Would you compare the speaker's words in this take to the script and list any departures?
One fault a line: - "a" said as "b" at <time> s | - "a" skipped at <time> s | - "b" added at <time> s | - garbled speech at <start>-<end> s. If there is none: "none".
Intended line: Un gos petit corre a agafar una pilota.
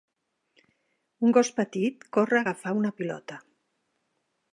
none